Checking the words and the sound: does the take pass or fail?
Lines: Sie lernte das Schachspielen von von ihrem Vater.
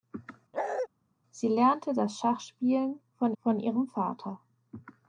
fail